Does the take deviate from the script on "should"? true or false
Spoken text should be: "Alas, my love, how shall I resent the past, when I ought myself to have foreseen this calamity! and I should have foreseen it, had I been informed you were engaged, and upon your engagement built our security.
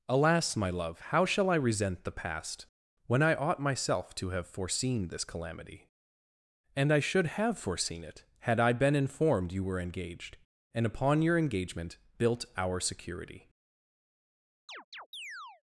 false